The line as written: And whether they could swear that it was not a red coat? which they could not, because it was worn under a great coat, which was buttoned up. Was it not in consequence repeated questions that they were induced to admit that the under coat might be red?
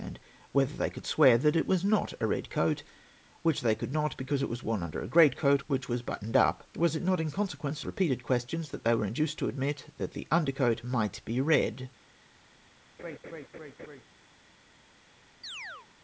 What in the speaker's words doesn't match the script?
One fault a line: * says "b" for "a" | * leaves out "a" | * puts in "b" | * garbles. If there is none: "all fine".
all fine